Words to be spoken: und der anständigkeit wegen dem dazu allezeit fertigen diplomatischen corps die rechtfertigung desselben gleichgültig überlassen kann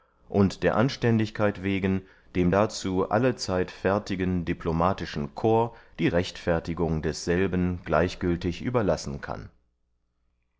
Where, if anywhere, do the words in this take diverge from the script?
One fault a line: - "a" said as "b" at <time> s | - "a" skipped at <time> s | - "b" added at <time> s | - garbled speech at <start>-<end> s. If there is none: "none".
none